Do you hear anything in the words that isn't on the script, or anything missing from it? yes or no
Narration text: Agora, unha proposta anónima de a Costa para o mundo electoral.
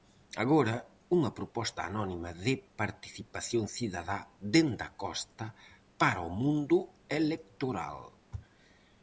yes